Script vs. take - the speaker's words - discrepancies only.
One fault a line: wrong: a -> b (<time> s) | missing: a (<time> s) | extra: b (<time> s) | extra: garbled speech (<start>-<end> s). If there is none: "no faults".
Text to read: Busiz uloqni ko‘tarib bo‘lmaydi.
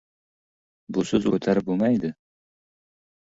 missing: uloqni (1.3 s)